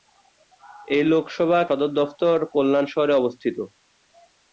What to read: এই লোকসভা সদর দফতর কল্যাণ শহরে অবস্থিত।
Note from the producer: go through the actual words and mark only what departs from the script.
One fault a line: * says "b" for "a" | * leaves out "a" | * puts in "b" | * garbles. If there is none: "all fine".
all fine